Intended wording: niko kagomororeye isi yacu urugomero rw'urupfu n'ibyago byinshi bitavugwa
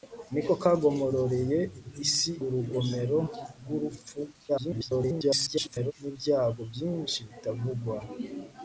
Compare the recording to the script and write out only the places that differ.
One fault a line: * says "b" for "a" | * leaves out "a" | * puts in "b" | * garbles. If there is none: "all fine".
* leaves out "yacu"
* garbles